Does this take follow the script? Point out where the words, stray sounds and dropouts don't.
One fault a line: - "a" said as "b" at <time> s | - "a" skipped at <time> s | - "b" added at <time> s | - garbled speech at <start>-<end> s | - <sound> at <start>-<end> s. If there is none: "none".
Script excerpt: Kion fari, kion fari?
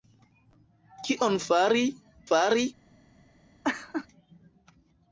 - "kion" skipped at 1.8 s
- laugh at 3.6-4.1 s